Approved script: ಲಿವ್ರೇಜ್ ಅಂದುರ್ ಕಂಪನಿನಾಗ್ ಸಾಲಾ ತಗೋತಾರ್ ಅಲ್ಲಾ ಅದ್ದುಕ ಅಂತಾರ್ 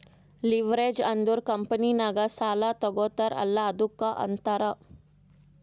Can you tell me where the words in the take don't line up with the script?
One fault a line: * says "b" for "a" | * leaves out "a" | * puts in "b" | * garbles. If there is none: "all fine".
all fine